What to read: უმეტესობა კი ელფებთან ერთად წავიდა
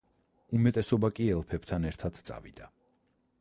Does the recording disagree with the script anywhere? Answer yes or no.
no